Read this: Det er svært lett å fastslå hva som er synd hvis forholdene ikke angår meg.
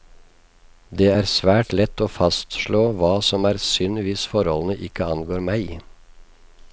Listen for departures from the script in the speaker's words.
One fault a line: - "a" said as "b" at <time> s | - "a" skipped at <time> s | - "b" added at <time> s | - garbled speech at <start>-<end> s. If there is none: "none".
none